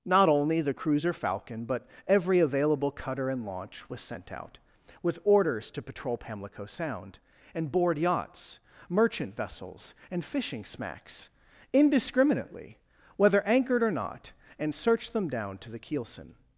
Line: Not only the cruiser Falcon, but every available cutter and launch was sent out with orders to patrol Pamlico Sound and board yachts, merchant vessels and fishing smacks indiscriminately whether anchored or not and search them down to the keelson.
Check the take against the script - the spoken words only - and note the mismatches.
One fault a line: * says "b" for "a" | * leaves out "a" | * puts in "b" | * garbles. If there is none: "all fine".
all fine